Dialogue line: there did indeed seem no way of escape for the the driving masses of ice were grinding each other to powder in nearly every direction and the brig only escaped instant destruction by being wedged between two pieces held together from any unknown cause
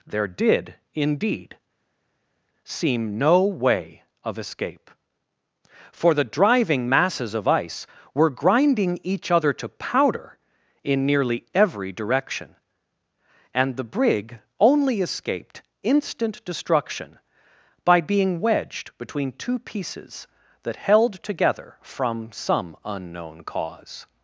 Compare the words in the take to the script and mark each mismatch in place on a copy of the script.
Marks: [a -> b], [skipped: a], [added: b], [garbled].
there did indeed seem no way of escape for the [skipped: the] driving masses of ice were grinding each other to powder in nearly every direction and the brig only escaped instant destruction by being wedged between two pieces [added: that] held together from [any -> some] unknown cause